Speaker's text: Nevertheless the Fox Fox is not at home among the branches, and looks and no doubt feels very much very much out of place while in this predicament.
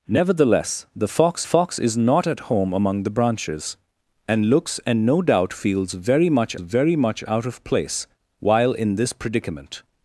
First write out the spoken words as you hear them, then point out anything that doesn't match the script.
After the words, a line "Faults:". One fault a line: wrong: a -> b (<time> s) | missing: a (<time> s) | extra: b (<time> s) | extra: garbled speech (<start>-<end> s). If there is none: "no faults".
Nevertheless the Fox Fox is not at home among the branches, and looks and no doubt feels very much very much out of place while in this predicament.
Faults:
no faults